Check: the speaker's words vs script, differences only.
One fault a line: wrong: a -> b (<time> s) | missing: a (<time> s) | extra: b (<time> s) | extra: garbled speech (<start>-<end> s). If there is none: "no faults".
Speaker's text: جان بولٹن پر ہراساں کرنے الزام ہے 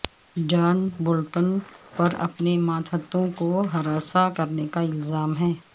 extra: اپنے ماتحتوں کو (2.2 s)
extra: کا (4.7 s)